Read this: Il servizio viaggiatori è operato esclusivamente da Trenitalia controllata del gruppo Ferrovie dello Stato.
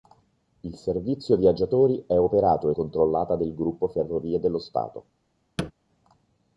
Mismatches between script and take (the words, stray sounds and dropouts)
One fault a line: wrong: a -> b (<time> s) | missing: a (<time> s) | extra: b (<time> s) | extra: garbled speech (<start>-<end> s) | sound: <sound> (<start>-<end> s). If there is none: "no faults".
missing: esclusivamente da Trenitalia (2.7 s)
sound: thud (5.6-5.7 s)